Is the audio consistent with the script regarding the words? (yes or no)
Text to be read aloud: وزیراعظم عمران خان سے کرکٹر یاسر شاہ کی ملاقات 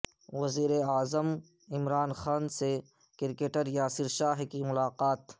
yes